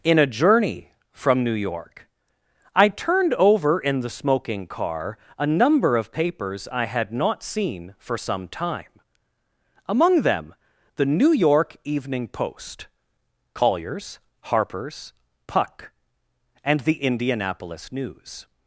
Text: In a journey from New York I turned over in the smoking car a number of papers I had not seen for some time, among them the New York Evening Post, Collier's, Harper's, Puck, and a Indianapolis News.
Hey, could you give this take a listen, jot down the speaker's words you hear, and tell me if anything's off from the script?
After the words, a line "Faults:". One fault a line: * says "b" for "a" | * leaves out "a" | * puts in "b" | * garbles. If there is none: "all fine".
In a journey from New York I turned over in the smoking car a number of papers I had not seen for some time, among them the New York Evening Post, Collier's, Harper's, Puck, and the Indianapolis News.
Faults:
* says "the" for "a"